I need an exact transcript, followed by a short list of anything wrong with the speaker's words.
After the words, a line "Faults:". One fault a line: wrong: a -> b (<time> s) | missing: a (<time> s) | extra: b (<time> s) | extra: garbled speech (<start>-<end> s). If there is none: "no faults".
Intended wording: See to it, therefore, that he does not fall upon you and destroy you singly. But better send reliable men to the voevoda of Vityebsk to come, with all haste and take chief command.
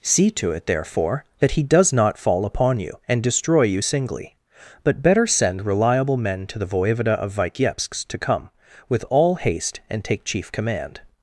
See to it, therefore, that he does not fall upon you and destroy you singly. But better send reliable men to the voevoda of Vityebsk to come, with all haste and take chief command.
Faults:
no faults